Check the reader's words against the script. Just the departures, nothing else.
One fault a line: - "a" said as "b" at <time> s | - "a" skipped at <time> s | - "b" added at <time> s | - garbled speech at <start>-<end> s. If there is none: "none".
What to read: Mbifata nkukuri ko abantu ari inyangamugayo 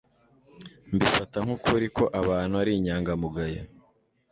none